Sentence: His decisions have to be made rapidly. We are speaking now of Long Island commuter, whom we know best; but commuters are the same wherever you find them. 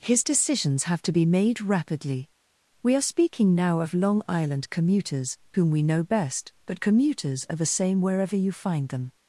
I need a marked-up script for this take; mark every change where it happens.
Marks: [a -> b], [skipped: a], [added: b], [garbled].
His decisions have to be made rapidly. We are speaking now of Long Island [commuter, -> commuters] whom we know best; but commuters are the same wherever you find them.